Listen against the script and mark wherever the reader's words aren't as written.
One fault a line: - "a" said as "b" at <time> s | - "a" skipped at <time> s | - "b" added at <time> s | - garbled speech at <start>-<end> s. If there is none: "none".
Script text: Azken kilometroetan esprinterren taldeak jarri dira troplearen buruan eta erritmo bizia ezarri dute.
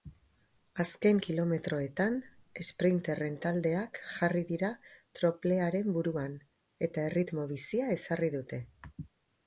none